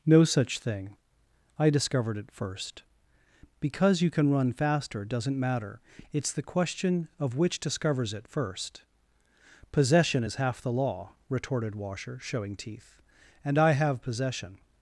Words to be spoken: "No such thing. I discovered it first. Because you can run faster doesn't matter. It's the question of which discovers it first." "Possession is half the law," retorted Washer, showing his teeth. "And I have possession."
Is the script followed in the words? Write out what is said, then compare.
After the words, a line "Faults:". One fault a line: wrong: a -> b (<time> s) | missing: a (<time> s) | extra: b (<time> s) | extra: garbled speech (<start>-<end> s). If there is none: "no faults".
"No such thing. I discovered it first. Because you can run faster doesn't matter. It's the question of which discovers it first." "Possession is half the law," retorted Washer, showing teeth. "And I have possession."
Faults:
missing: his (12.6 s)